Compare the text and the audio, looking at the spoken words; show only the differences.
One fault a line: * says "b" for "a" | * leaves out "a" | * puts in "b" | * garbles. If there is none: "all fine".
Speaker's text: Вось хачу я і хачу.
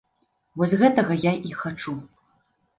* says "гэтага" for "хачу"